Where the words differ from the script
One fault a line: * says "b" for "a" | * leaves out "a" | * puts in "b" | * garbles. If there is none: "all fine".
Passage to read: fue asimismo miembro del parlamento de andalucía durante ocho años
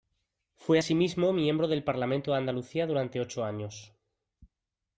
all fine